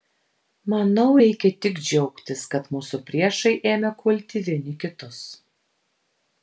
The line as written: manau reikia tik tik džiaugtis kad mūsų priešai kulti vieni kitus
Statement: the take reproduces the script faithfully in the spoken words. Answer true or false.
false